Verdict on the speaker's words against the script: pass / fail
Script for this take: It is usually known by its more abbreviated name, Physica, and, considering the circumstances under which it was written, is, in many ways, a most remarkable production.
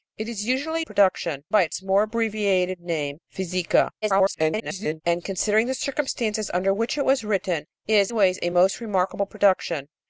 fail